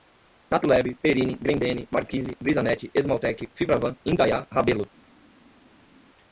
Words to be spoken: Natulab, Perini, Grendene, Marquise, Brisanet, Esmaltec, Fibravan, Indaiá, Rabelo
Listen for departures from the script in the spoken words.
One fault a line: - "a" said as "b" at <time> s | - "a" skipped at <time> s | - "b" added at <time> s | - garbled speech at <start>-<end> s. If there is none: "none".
none